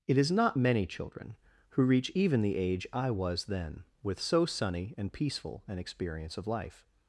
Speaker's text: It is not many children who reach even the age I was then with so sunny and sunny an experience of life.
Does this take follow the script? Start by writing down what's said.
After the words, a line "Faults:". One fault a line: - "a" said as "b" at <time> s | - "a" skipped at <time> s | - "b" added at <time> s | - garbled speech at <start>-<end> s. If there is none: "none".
It is not many children who reach even the age I was then with so sunny and peaceful an experience of life.
Faults:
- "sunny" said as "peaceful" at 5.1 s